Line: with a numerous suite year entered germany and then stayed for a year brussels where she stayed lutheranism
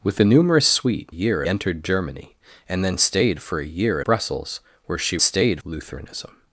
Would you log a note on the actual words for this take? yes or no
no